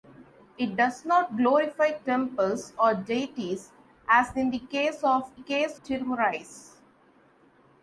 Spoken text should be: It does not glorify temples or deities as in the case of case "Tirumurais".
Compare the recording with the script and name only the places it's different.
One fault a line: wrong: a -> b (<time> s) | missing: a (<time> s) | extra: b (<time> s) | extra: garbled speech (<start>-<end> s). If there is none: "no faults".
no faults